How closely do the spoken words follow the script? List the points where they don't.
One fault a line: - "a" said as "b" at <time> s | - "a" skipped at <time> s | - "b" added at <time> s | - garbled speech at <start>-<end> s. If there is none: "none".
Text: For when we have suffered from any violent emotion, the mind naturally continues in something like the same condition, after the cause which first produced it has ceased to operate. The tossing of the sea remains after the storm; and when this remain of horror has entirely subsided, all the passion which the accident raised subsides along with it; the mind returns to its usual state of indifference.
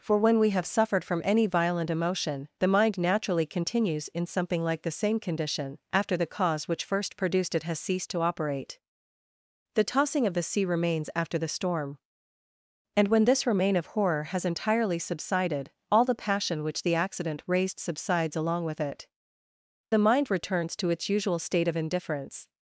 none